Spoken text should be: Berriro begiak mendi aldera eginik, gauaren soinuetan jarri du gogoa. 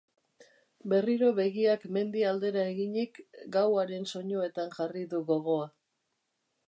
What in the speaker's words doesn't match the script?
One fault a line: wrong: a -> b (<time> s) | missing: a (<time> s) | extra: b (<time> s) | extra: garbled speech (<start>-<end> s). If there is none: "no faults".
no faults